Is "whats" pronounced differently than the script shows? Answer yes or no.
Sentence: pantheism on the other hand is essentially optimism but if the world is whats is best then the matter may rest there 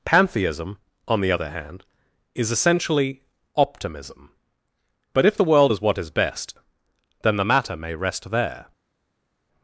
yes